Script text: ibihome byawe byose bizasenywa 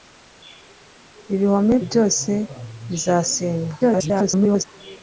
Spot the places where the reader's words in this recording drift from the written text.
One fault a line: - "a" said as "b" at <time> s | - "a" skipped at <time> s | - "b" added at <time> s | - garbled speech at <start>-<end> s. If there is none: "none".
- "byawe" skipped at 1.8 s
- garbled speech at 3.8-4.6 s